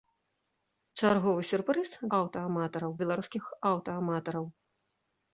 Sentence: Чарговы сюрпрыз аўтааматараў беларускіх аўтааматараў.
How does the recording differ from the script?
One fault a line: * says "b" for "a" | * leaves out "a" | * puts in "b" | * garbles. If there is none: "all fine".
all fine